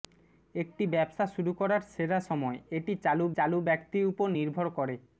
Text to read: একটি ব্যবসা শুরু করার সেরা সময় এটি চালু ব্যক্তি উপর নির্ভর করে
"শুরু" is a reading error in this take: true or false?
false